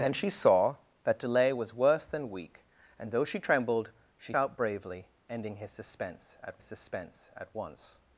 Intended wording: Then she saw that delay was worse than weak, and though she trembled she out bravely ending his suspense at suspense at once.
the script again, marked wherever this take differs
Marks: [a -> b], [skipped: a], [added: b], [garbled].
Then she saw that delay was worse than weak, and though she trembled she out bravely ending his suspense at suspense at once.